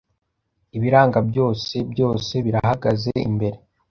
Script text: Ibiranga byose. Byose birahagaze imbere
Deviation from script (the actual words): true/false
false